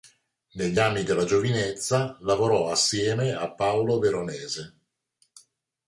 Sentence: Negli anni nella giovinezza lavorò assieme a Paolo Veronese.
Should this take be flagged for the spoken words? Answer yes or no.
yes